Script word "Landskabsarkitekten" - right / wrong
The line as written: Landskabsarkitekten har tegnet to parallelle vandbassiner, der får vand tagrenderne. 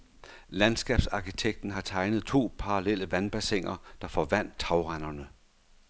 right